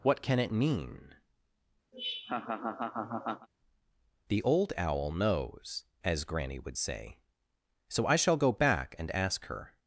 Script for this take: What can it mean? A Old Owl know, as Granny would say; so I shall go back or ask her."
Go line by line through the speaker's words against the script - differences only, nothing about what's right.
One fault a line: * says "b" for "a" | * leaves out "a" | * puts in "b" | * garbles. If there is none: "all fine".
* says "The" for "A"
* says "knows" for "know"
* says "and" for "or"